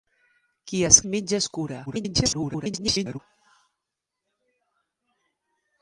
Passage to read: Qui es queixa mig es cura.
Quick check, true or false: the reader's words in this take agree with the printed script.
false